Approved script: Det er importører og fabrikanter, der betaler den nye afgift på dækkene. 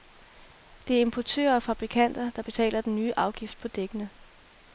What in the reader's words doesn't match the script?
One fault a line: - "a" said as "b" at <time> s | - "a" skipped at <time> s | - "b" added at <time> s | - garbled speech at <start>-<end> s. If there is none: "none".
none